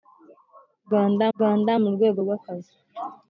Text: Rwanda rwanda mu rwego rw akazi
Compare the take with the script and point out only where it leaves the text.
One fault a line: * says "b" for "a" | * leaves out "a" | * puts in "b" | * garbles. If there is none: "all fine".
all fine